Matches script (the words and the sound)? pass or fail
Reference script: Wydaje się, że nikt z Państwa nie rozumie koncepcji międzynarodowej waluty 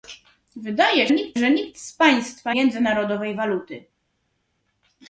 fail